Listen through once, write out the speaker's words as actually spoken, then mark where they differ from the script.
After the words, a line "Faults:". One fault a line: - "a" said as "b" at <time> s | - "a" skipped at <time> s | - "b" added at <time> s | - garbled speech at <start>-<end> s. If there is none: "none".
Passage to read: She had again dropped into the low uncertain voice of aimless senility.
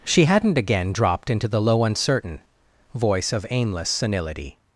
She hadn't again dropped into the low uncertain voice of aimless senility.
Faults:
- "had" said as "hadn't" at 0.2 s